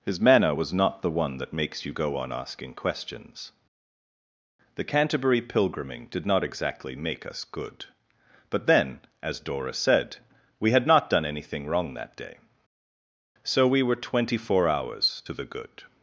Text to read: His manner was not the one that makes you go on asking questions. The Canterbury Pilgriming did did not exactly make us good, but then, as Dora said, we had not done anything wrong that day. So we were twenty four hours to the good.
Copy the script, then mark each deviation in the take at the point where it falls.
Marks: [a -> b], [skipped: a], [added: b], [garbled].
His manner was not the one that makes you go on asking questions. The Canterbury Pilgriming did [skipped: did] not exactly make us good, but then, as Dora said, we had not done anything wrong that day. So we were twenty four hours to the good.